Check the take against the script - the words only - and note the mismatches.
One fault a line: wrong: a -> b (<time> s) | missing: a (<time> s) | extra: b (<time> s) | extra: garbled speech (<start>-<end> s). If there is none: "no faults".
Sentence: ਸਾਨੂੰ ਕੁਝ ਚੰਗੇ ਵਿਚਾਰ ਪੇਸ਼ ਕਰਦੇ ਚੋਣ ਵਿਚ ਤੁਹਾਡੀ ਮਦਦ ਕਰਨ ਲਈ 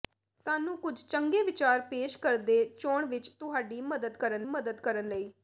extra: ਮਦਦ ਕਰਨ (4.4 s)